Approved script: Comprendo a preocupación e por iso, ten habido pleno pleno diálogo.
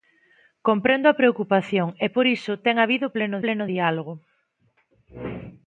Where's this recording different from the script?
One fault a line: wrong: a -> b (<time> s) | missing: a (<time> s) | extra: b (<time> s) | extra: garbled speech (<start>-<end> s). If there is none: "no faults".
no faults